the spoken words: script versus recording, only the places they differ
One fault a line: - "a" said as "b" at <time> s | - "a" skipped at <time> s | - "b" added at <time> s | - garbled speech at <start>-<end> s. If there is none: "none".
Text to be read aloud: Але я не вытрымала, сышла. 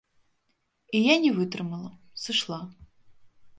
- "Але" said as "І" at 0.9 s